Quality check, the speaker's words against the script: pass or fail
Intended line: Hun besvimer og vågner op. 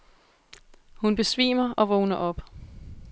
pass